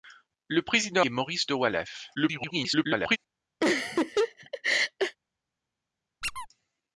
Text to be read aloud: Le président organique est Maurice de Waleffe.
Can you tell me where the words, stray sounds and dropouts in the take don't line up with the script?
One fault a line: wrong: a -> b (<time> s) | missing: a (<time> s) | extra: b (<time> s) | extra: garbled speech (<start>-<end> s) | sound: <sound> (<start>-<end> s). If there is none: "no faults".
missing: organique (1.1 s)
extra: garbled speech (2.1-3.2 s)
sound: laugh (3.6-5.2 s)
sound: squeak (6.2-6.5 s)